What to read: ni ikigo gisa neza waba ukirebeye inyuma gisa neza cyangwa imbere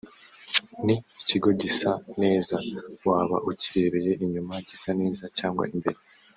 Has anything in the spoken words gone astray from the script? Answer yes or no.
no